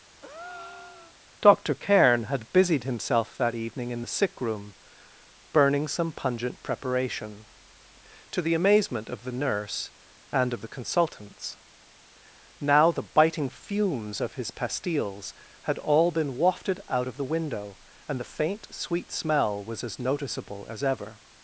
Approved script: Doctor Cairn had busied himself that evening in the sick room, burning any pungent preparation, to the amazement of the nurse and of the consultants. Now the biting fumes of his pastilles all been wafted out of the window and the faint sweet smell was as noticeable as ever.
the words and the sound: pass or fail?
fail